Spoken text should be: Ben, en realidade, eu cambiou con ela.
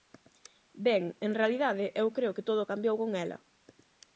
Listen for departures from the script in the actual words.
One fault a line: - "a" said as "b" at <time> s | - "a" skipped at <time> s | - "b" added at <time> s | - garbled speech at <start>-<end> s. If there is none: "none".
- "creo que todo" added at 2.2 s